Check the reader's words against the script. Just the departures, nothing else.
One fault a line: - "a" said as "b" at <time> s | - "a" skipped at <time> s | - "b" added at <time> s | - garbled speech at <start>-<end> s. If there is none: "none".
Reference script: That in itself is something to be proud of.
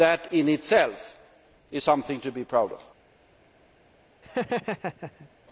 none